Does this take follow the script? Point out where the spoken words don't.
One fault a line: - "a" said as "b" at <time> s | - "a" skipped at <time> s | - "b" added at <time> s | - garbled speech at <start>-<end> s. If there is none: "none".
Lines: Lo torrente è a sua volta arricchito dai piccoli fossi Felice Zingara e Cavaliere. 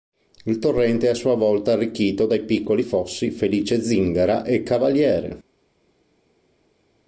- "Lo" said as "Il" at 0.5 s